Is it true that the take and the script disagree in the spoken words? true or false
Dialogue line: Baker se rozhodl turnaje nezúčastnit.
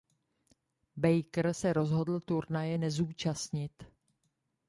false